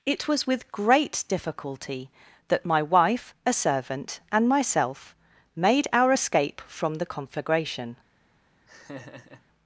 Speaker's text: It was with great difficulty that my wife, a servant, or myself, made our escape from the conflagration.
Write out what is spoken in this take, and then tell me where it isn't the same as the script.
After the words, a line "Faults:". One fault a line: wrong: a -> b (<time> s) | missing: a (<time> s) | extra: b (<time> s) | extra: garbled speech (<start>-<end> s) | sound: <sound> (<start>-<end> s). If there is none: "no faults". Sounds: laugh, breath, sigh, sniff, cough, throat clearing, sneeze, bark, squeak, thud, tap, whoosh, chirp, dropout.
It was with great difficulty that my wife, a servant, and myself, made our escape from the conflagration.
Faults:
wrong: or -> and (4.3 s)
sound: laugh (8.7-9.4 s)